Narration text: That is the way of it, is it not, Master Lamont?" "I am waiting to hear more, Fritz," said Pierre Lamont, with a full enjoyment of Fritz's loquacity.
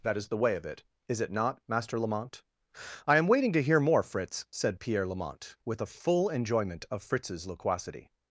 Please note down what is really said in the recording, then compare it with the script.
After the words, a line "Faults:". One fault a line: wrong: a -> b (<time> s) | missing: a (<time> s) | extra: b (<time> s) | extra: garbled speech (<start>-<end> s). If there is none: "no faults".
That is the way of it, is it not, Master Lamont?" "I am waiting to hear more, Fritz," said Pierre Lamont, with a full enjoyment of Fritz's loquacity.
Faults:
no faults